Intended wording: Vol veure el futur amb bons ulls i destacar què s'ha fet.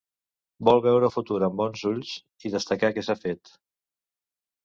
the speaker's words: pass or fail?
pass